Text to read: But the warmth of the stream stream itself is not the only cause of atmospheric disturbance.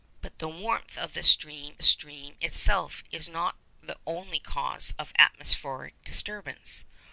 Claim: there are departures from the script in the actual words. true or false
false